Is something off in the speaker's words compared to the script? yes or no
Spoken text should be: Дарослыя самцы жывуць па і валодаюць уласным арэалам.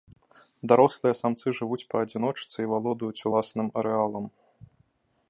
yes